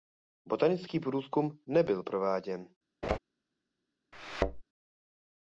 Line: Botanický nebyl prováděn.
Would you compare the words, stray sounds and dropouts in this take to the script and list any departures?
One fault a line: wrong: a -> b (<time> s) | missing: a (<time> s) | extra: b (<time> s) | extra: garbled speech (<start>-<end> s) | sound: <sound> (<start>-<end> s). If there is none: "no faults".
extra: průzkum (1.0 s)
sound: laugh (3.0-3.2 s)
sound: thud (4.1-4.6 s)